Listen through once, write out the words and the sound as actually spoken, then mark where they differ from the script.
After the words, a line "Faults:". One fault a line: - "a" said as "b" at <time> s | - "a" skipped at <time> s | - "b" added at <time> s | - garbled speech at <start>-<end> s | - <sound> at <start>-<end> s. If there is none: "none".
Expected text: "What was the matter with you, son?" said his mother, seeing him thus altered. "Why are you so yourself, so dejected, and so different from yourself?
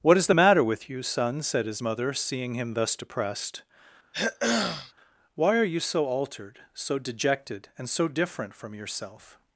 "What is the matter with you, son?" said his mother, seeing him thus depressed. "Why are you so altered, so dejected, and so different from yourself?
Faults:
- "was" said as "is" at 0.2 s
- "altered" said as "depressed" at 3.0 s
- throat clearing at 4.1-4.9 s
- "yourself" said as "altered" at 6.1 s